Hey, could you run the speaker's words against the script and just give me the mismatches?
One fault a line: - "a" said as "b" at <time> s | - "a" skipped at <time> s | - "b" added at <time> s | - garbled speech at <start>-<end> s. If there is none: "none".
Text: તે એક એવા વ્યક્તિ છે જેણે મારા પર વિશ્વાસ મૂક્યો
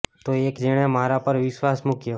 - "એવા વ્યક્તિ છે" skipped at 0.6 s